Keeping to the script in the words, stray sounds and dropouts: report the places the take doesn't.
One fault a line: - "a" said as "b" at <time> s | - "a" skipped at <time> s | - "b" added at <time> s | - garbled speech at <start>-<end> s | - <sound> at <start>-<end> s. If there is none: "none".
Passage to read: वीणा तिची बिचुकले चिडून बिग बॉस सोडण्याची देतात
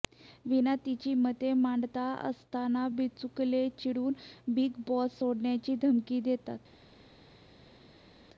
- "मते मांडत असताना" added at 1.1 s
- "धमकी" added at 5.8 s